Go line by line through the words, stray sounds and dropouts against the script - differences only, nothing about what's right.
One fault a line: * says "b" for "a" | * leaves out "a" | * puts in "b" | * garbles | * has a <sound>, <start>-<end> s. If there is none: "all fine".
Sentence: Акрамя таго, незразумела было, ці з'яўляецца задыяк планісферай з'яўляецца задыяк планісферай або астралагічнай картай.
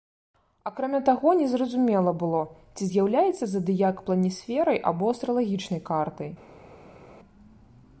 * leaves out "з'яўляецца задыяк планісферай"